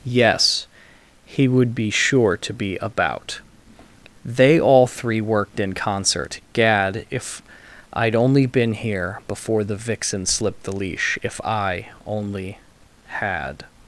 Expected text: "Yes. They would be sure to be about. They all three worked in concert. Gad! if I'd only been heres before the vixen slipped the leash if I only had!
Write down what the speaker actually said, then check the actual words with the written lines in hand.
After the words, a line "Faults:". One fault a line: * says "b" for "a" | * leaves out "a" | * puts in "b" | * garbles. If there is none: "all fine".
"Yes. He would be sure to be about. They all three worked in concert. Gad! if I'd only been here before the vixen slipped the leash if I only had!
Faults:
* says "He" for "They"
* says "here" for "heres"